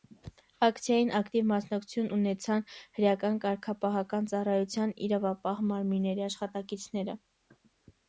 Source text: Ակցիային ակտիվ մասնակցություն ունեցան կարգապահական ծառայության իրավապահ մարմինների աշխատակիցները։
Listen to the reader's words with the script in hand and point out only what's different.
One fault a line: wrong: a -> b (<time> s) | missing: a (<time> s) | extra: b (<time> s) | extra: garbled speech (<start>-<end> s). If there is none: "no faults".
extra: հրեական (3.0 s)